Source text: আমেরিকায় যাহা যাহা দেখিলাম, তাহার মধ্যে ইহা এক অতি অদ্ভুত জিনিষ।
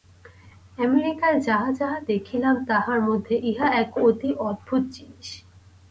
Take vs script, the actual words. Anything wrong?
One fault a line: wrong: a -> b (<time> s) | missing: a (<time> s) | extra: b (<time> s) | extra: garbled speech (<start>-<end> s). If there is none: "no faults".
no faults